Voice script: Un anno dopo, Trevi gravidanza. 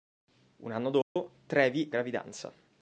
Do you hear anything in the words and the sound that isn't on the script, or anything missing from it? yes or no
yes